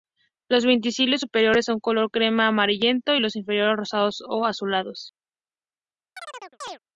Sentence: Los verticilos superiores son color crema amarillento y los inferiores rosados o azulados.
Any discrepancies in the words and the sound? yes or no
yes